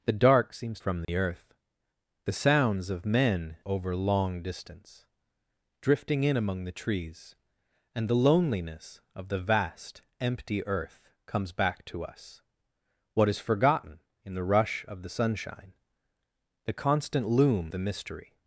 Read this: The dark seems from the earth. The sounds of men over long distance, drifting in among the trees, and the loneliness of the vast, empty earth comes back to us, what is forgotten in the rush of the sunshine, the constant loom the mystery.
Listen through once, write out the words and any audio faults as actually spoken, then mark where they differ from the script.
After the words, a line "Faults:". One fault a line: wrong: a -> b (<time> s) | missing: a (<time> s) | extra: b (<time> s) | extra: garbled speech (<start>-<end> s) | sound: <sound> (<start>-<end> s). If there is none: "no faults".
The dark seems from the earth. The sounds of men over long distance, drifting in among the trees, and the loneliness of the vast, empty earth comes back to us, what is forgotten in the rush of the sunshine, the constant loom the mystery.
Faults:
sound: dropout (1.0-1.1 s)